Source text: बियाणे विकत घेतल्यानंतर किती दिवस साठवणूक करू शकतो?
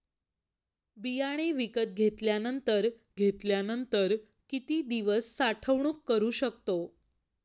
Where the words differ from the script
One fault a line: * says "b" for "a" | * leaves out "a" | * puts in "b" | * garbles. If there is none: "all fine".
* puts in "घेतल्यानंतर"